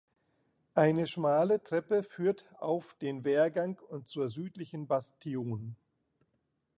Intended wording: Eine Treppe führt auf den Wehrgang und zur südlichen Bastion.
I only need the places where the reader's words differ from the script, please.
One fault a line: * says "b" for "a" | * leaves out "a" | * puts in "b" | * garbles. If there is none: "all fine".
* puts in "schmale"